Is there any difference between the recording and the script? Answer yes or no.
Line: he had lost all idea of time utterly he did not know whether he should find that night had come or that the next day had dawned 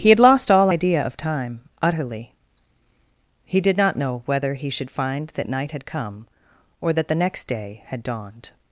no